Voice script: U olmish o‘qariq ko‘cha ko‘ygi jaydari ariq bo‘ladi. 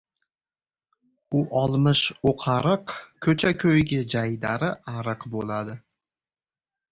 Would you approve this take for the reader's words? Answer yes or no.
yes